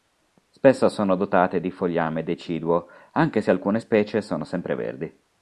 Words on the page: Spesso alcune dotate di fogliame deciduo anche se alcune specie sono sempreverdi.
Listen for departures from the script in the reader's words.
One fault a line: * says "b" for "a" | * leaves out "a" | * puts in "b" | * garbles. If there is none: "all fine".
* says "sono" for "alcune"